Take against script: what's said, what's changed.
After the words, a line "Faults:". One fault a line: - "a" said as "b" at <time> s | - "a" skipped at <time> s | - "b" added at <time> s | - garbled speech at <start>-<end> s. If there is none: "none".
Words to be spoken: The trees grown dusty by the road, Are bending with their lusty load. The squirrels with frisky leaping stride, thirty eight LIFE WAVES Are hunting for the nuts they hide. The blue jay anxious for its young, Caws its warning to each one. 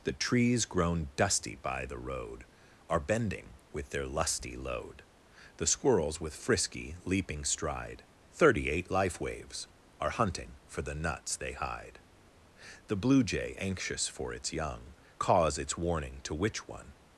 The trees grown dusty by the road, Are bending with their lusty load. The squirrels with frisky leaping stride, thirty eight LIFE WAVES Are hunting for the nuts they hide. The blue jay anxious for its young, Caws its warning to which one.
Faults:
- "each" said as "which" at 16.3 s